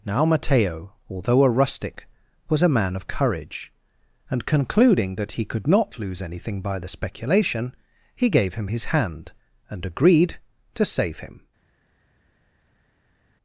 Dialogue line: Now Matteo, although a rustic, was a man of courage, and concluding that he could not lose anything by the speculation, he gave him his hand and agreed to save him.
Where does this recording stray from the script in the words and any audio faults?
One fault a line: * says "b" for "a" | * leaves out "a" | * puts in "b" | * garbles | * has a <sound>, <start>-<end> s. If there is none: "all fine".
all fine